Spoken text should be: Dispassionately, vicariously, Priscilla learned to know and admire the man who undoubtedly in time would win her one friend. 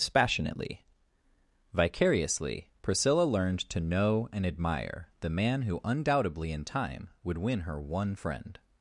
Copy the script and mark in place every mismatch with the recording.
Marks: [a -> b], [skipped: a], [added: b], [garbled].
Dispassionately, vicariously, Priscilla learned to know and admire the man who undoubtedly in time would win her one friend.